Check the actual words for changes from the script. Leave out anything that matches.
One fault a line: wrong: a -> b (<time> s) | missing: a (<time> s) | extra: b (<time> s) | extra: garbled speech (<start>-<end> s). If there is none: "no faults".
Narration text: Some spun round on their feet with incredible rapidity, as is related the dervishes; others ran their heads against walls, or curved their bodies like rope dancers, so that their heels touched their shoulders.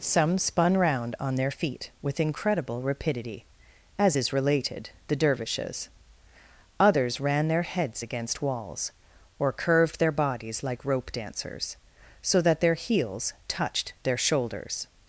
no faults